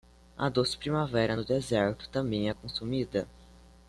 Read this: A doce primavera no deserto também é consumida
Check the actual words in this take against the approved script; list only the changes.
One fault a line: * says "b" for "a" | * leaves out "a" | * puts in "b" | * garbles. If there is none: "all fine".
all fine